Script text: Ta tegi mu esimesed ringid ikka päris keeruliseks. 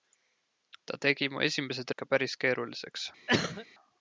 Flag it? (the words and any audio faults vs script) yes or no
yes